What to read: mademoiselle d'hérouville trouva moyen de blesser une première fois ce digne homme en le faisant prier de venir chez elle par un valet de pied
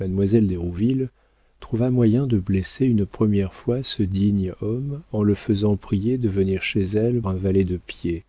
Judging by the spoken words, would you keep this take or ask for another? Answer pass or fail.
fail